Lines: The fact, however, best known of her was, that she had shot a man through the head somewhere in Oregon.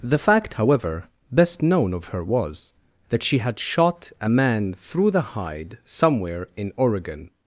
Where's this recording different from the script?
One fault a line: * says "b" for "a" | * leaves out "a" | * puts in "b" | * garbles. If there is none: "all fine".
* says "hide" for "head"